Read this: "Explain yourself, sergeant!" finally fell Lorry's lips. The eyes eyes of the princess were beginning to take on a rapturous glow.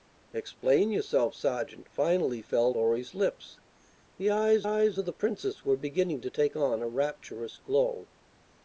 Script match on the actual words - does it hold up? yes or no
yes